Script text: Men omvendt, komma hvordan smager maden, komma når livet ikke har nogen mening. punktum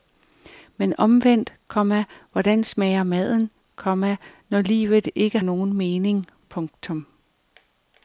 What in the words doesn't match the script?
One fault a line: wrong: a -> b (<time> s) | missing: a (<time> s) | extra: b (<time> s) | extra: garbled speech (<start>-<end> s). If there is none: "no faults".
missing: har (5.4 s)